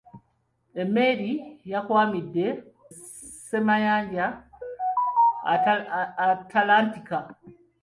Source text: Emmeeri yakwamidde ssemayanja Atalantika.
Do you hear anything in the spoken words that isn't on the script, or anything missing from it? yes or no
no